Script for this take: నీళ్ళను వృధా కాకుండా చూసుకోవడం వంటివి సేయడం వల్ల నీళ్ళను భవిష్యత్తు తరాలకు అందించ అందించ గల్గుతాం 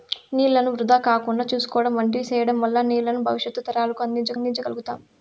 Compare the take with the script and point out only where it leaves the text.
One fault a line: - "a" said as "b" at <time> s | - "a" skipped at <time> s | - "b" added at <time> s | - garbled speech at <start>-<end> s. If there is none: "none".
none